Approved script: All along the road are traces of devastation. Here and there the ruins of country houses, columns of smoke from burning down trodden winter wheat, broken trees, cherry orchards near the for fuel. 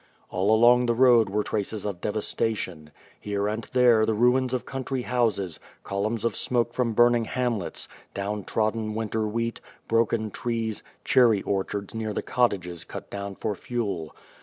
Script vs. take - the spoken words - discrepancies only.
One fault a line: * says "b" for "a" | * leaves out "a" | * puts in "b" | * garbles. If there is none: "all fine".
* says "were" for "are"
* puts in "hamlets"
* puts in "cottages cut down"